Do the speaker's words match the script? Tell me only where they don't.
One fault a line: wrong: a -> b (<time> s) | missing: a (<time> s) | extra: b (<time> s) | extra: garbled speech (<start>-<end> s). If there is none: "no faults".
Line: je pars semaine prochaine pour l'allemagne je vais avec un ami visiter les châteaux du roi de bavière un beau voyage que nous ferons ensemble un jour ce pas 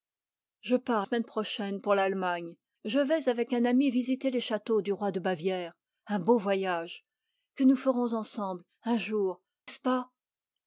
no faults